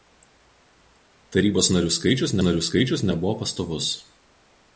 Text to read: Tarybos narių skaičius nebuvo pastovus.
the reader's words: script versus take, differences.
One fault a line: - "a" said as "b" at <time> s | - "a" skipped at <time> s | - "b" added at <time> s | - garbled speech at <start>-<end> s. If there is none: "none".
- "narių skaičius" added at 2.5 s